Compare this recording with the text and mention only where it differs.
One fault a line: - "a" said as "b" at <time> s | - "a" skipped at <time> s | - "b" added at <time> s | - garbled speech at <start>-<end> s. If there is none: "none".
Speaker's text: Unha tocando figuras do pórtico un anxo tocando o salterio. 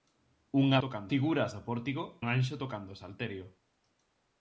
none